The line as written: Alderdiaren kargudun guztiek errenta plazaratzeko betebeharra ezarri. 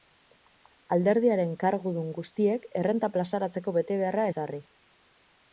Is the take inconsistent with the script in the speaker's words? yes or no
no